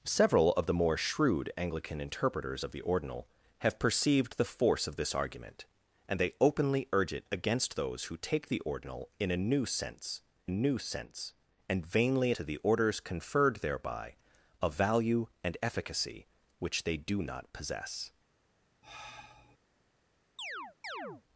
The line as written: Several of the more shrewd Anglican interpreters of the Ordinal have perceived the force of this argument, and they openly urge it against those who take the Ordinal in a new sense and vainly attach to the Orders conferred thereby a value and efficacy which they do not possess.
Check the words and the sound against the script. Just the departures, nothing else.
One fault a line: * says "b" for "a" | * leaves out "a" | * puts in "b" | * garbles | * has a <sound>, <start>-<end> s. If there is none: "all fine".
* puts in "new sense"
* leaves out "attach"
* has a sigh, 18.8-19.6 s
* has a chirp, 20.4-21.2 s